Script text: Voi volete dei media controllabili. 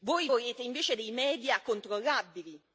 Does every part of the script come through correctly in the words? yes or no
no